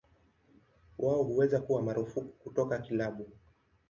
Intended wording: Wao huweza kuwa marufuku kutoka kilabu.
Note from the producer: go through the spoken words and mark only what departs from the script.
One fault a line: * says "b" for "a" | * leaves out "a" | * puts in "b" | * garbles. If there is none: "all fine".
all fine